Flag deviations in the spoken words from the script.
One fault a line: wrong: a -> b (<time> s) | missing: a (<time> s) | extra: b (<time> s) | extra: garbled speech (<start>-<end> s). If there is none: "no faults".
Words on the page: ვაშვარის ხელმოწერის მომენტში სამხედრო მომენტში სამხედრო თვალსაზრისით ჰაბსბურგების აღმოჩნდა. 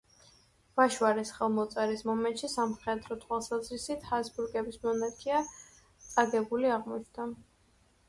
wrong: მომენტში სამხედრო თვალსაზრისით ჰაბსბურგების -> თვალსაზრისით ჰაბსბურგების მონარქია წაგებული (3.2 s)